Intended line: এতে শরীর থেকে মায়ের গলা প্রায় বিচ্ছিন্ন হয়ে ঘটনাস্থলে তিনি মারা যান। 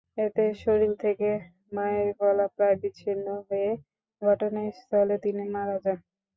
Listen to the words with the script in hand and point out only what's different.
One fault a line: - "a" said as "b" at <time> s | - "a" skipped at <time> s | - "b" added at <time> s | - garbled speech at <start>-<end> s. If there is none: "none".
none